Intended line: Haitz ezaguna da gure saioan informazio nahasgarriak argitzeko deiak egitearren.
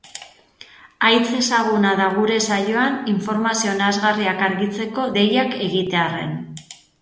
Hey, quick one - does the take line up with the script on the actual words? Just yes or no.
yes